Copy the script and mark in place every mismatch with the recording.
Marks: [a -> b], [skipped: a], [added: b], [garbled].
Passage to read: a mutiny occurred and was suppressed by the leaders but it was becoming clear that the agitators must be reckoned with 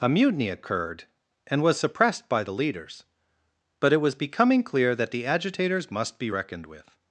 a mutiny occurred and was suppressed by the leaders but it was becoming clear that the agitators must be reckoned with